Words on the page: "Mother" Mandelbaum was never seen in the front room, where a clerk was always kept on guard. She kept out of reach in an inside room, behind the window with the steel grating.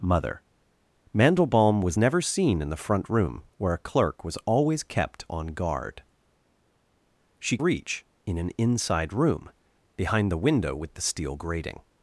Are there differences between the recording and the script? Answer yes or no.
yes